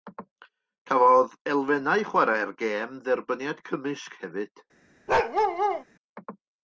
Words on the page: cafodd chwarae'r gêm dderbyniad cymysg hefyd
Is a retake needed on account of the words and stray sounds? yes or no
yes